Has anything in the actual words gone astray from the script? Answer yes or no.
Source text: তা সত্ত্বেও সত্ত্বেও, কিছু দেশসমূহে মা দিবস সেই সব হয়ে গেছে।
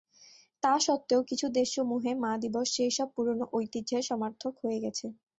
yes